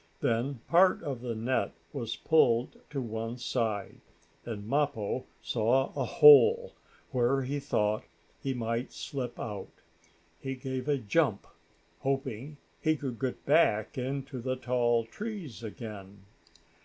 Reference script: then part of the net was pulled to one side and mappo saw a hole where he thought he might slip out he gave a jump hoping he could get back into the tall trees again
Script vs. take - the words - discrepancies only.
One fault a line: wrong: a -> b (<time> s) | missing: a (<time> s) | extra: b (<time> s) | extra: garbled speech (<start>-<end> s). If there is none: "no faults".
no faults